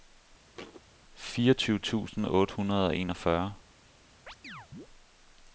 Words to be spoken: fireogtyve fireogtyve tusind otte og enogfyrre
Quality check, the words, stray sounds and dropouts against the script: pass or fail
fail